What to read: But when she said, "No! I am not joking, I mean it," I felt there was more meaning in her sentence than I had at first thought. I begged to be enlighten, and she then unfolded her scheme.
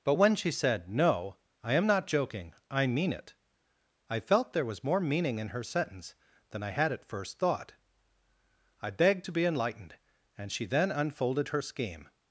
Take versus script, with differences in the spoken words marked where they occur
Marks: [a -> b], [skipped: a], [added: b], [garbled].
But when she said, "No! I am not joking, I mean it," I felt there was more meaning in her sentence than I had at first thought. I begged to be [enlighten, -> enlightened] and she then unfolded her scheme.